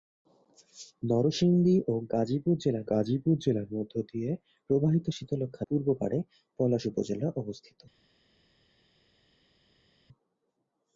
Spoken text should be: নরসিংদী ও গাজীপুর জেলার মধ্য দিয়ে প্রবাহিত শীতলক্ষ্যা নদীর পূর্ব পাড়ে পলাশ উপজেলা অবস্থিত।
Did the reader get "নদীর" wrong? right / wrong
wrong